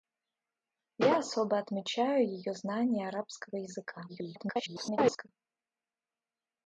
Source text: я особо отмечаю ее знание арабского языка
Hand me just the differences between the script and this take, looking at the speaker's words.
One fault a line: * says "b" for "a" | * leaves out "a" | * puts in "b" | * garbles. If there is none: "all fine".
* garbles